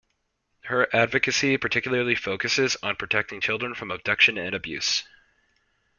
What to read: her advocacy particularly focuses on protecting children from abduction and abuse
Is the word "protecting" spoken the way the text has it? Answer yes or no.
yes